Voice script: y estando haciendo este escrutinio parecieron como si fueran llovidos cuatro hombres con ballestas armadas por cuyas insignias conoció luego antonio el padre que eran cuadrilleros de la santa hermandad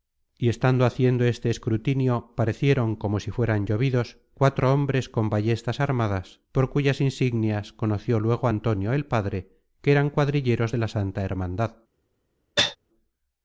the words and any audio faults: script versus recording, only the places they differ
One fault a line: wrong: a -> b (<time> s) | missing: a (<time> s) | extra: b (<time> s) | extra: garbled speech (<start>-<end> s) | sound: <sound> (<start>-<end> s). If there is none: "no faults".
sound: cough (12.6-12.8 s)